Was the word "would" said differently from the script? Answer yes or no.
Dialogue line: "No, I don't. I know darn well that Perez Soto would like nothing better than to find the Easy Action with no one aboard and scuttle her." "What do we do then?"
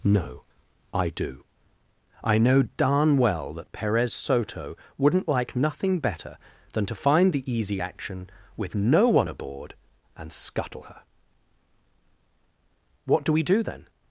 yes